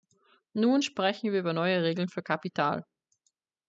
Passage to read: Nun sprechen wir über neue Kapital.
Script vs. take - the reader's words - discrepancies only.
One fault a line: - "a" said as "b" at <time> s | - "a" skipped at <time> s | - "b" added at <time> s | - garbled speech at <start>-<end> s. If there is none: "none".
- "Regeln für" added at 1.8 s